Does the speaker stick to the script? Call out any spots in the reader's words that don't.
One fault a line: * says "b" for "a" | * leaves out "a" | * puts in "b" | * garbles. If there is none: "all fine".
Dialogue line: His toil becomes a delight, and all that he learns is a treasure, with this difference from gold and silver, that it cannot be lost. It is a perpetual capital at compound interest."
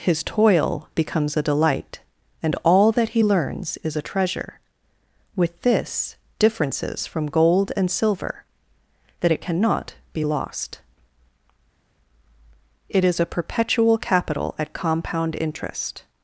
* says "differences" for "difference"